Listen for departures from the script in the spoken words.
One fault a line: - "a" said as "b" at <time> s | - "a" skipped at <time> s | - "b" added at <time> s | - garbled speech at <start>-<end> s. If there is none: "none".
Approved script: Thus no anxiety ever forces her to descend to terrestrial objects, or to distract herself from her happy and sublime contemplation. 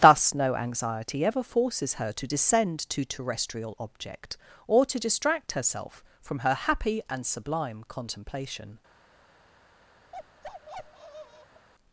- "objects" said as "object" at 3.8 s